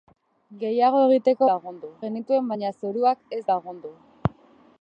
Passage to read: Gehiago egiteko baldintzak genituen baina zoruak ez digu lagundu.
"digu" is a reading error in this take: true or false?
true